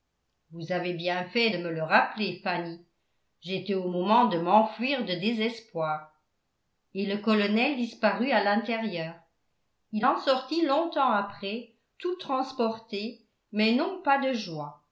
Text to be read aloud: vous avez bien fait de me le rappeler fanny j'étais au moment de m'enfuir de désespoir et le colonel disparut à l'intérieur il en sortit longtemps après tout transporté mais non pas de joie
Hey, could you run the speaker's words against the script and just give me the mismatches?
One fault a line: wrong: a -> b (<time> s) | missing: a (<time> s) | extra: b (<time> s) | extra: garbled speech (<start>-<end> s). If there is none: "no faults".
no faults